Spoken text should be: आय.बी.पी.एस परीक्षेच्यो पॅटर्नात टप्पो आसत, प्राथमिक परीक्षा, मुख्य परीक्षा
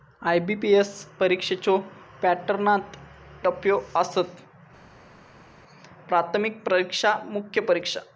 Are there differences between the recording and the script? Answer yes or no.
no